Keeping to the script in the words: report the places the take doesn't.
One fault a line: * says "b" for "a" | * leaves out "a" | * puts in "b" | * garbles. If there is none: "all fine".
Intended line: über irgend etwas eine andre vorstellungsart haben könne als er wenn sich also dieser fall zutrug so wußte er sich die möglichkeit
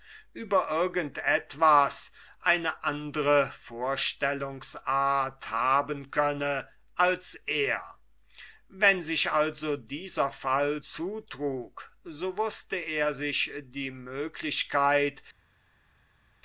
all fine